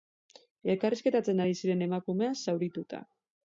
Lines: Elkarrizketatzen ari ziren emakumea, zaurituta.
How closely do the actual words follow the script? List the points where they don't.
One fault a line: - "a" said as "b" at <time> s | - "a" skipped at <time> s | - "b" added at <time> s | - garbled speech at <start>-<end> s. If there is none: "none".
none